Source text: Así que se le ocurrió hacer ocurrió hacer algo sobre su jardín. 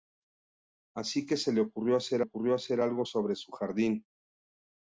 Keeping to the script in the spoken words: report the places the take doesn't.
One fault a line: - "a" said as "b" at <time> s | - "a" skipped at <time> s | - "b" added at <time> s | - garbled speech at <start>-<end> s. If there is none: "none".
none